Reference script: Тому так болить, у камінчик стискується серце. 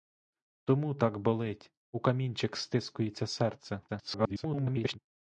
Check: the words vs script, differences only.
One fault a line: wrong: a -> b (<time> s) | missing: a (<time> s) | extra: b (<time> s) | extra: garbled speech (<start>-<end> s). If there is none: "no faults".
extra: garbled speech (3.9-5.0 s)